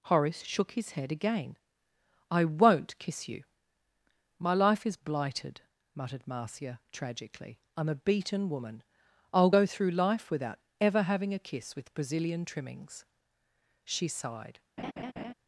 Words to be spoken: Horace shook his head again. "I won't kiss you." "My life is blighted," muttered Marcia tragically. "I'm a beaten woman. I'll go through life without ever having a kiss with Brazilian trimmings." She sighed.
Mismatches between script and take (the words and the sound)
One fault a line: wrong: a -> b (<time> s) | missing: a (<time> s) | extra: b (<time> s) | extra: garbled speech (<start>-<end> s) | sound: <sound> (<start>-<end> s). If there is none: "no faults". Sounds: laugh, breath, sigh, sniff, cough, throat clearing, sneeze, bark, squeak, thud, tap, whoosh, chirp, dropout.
sound: laugh (14.8-15.3 s)